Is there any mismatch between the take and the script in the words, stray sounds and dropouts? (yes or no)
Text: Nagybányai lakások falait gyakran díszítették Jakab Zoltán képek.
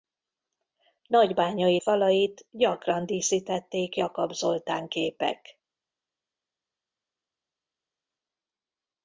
yes